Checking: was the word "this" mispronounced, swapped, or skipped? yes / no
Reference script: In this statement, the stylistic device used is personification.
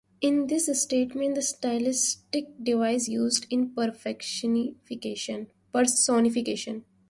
no